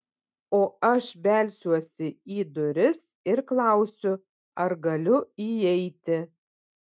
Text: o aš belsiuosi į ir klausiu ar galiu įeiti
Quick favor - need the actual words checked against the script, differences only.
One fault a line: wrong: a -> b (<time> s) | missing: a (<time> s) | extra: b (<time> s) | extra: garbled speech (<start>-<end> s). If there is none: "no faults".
extra: duris (2.6 s)